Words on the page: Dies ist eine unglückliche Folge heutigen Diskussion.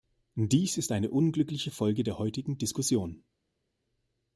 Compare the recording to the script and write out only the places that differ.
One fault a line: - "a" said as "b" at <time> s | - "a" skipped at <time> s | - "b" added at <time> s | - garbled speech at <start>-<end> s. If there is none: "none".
- "der" added at 2.0 s